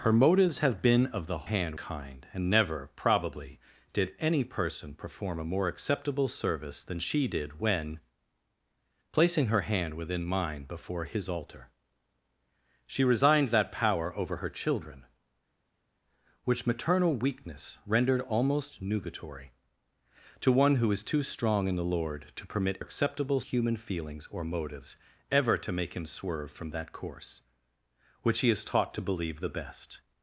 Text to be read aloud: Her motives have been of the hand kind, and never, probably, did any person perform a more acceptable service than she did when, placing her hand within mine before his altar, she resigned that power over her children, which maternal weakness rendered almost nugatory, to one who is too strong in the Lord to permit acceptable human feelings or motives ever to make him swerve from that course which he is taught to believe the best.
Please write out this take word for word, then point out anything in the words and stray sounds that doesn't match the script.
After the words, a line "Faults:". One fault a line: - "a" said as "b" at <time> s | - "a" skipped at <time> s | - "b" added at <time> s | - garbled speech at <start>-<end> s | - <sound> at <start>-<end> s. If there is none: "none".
Her motives have been of the hand kind, and never, probably, did any person perform a more acceptable service than she did when, placing her hand within mine before his altar, she resigned that power over her children, which maternal weakness rendered almost nugatory, to one who is too strong in the Lord to permit acceptable human feelings or motives ever to make him swerve from that course which he is taught to believe the best.
Faults:
none